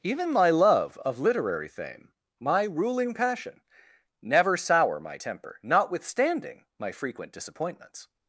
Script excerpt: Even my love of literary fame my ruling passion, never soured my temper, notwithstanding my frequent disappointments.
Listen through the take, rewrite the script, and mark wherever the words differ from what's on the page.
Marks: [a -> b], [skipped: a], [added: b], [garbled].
Even my love of literary fame my ruling passion, never [soured -> sour] my temper, notwithstanding my frequent disappointments.